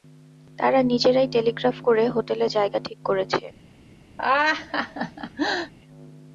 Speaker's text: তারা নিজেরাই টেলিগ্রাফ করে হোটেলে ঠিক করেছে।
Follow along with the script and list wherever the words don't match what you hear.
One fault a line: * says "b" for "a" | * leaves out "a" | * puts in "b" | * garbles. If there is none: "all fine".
* puts in "জায়গা"